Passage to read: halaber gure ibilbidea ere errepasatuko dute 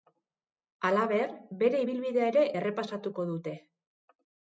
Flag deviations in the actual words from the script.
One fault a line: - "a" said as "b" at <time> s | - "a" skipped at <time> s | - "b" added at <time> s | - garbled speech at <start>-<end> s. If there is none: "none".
- "gure" said as "bere" at 1.6 s